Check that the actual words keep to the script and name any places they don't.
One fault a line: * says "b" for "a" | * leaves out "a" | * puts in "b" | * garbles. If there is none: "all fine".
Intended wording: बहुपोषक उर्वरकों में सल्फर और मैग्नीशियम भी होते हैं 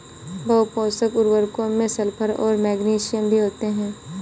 all fine